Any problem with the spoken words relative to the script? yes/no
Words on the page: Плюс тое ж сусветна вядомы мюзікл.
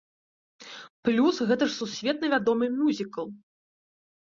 yes